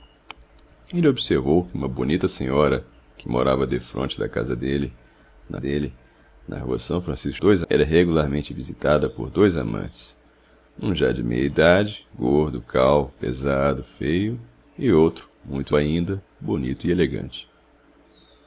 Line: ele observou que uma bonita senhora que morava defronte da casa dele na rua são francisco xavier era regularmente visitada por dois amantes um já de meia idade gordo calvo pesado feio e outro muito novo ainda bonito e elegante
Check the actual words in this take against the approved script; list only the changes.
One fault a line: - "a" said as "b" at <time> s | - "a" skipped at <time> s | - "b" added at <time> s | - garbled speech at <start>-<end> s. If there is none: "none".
- "dele na" added at 5.6 s
- "xavier" said as "dois" at 7.4 s
- "novo" skipped at 15.7 s